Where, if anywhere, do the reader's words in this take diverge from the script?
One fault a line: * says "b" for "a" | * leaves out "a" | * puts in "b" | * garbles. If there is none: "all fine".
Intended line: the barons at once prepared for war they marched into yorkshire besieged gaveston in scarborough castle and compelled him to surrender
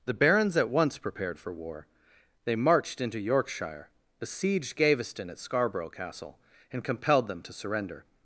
* says "at" for "in"
* says "them" for "him"